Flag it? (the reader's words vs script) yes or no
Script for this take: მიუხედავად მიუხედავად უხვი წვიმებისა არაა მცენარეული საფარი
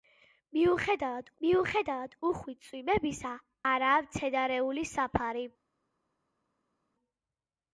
no